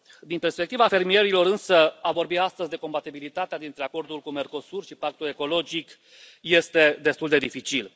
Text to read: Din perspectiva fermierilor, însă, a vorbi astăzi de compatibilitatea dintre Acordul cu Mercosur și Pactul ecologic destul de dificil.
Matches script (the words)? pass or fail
fail